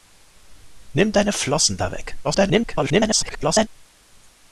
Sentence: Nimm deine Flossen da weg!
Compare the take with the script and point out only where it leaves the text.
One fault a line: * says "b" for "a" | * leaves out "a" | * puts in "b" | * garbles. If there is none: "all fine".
* garbles